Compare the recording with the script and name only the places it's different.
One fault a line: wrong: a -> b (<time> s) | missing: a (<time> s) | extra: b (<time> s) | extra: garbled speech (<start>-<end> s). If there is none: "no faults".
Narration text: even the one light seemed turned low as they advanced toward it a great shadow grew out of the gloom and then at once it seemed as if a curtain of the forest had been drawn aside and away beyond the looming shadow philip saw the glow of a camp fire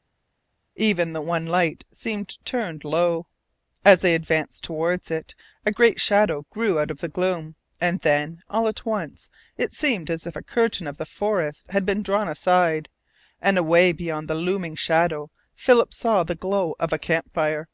extra: all (8.5 s)